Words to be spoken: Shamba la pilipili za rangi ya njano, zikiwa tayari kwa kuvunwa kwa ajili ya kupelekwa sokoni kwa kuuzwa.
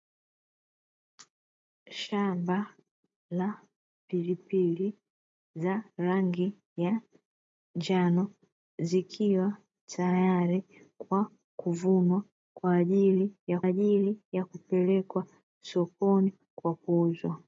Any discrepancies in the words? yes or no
yes